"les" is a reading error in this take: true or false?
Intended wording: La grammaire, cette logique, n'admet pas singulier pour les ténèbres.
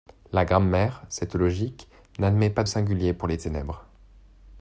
false